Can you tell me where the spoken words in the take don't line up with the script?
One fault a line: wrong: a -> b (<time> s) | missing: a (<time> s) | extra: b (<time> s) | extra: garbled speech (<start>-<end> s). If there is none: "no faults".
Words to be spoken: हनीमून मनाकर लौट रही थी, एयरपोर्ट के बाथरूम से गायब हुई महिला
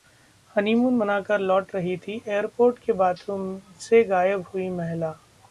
no faults